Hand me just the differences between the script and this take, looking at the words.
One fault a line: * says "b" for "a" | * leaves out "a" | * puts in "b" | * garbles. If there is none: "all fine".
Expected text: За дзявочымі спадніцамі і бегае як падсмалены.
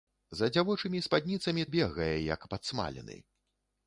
all fine